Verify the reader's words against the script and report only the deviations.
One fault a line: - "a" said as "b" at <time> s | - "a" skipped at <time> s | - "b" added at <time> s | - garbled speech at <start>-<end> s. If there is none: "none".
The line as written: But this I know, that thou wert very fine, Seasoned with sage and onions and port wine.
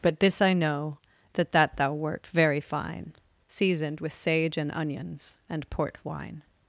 - "that" added at 1.5 s